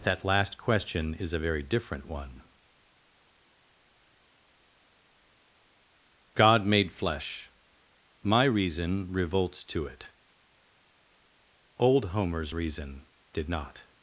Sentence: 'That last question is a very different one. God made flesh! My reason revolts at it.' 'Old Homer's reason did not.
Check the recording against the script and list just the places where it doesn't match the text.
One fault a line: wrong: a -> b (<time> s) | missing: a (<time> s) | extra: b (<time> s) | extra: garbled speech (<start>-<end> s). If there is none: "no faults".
wrong: at -> to (9.7 s)